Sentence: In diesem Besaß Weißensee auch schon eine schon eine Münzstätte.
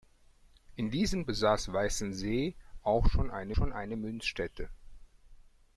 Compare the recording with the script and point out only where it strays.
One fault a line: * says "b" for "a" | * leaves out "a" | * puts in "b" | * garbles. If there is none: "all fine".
all fine